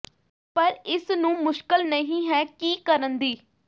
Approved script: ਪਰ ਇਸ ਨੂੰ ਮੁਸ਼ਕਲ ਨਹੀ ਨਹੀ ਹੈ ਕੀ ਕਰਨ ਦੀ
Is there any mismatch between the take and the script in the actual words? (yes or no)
yes